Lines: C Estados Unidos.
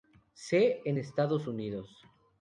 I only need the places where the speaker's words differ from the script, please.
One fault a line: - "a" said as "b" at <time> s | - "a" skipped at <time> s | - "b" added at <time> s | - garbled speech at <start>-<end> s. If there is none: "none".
- "en" added at 0.8 s